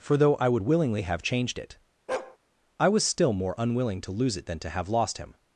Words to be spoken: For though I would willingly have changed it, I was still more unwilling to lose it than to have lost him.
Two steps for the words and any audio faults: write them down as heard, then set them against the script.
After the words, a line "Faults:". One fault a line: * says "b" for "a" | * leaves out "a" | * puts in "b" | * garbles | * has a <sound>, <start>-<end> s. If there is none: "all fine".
For though I would willingly have changed it, I was still more unwilling to lose it than to have lost him.
Faults:
* has a bark, 2.1-2.4 s